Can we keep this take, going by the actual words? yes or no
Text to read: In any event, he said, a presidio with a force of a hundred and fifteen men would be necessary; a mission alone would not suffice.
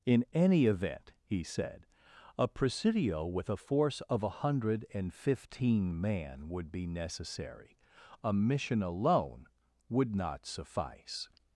no